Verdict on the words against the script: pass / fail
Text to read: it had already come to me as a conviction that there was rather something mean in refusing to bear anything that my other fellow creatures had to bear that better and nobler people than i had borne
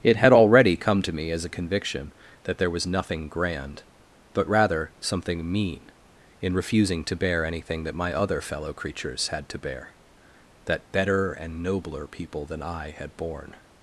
fail